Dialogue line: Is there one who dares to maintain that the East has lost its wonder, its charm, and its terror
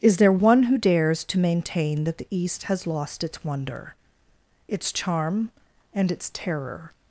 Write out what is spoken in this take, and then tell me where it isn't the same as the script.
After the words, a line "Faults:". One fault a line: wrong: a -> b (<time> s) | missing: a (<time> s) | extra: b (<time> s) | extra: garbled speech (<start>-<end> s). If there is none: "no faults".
Is there one who dares to maintain that the East has lost its wonder, its charm, and its terror
Faults:
no faults